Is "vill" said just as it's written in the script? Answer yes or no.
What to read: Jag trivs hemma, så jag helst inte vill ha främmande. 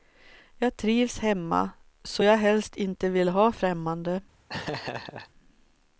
yes